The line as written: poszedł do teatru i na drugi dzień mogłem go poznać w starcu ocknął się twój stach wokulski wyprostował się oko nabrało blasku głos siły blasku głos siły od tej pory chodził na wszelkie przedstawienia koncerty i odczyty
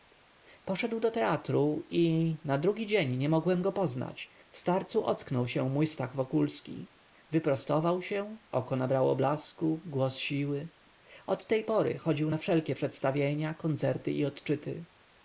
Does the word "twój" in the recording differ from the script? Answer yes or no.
yes